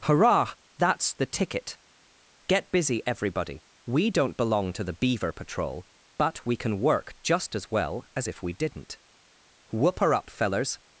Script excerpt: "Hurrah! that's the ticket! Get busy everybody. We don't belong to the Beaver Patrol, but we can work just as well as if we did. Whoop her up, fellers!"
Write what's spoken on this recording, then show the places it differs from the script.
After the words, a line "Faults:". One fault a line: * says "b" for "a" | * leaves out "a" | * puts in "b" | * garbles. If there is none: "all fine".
"Hurrah! that's the ticket! Get busy everybody. We don't belong to the Beaver Patrol, but we can work just as well as if we didn't. Whoop her up, fellers!"
Faults:
* says "didn't" for "did"